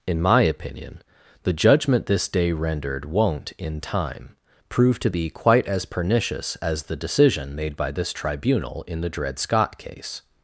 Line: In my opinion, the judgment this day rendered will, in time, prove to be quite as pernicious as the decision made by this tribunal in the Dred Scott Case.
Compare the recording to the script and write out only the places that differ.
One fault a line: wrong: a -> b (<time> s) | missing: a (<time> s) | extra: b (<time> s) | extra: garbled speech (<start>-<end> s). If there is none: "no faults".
wrong: will -> won't (3.0 s)